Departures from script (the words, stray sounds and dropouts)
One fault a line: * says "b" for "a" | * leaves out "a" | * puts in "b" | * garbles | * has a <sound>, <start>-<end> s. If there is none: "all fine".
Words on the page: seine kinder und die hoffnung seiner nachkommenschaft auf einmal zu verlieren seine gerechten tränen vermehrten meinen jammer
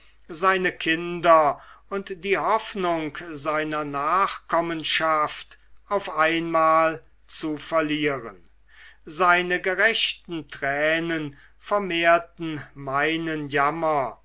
all fine